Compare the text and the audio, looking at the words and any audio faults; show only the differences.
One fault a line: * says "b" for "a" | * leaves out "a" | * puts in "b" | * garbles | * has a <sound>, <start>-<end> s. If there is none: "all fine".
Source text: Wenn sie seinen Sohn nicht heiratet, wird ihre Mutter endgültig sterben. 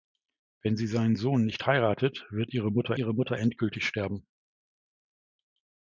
* puts in "ihre Mutter"